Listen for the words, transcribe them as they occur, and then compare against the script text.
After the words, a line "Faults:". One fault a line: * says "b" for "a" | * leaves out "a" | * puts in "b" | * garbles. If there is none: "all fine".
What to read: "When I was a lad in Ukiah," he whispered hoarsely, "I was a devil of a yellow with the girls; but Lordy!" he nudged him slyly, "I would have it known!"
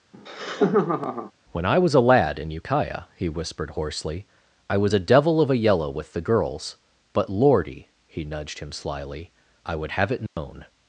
"When I was a lad in Ukiah," he whispered hoarsely, "I was a devil of a yellow with the girls; but Lordy!" he nudged him slyly, "I would have it known!"
Faults:
all fine